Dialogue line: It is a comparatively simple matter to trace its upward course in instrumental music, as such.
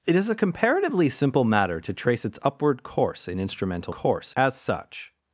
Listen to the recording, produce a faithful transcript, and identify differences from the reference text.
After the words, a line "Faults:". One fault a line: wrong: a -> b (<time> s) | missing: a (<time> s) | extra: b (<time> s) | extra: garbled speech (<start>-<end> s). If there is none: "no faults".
It is a comparatively simple matter to trace its upward course in instrumental course, as such.
Faults:
wrong: music -> course (3.9 s)